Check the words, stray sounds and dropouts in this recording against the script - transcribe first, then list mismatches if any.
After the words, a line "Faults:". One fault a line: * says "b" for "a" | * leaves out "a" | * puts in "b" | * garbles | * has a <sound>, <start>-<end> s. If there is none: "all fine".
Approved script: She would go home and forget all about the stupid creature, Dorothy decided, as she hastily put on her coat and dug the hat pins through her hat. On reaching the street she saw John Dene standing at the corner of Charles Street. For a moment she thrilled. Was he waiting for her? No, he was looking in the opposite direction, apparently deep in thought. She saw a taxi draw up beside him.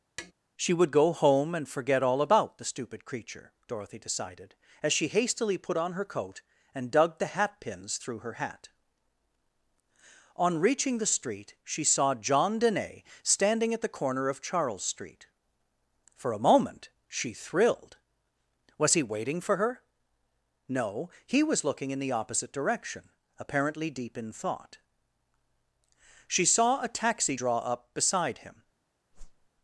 She would go home and forget all about the stupid creature, Dorothy decided, as she hastily put on her coat and dug the hat pins through her hat. On reaching the street she saw John Dene standing at the corner of Charles Street. For a moment she thrilled. Was he waiting for her? No, he was looking in the opposite direction, apparently deep in thought. She saw a taxi draw up beside him.
Faults:
* has a tap, 0.2-0.3 s
* has a whoosh, 29.1-29.5 s